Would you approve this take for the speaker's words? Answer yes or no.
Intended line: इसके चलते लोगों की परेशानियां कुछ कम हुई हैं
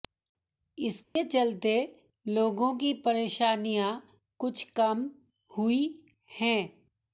yes